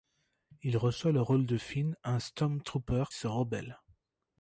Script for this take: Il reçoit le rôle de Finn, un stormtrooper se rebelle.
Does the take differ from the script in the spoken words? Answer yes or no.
no